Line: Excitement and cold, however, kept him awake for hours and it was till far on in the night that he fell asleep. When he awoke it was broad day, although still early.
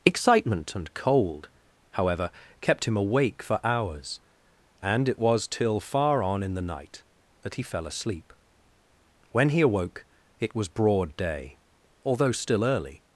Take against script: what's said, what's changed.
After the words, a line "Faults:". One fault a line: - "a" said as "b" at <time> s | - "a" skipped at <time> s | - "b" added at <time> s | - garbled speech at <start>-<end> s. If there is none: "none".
Excitement and cold, however, kept him awake for hours and it was till far on in the night that he fell asleep. When he awoke it was broad day, although still early.
Faults:
none